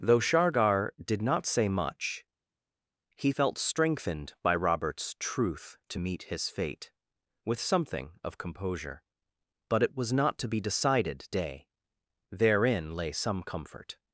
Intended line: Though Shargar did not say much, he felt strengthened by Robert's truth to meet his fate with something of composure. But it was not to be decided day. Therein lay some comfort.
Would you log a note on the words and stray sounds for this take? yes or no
no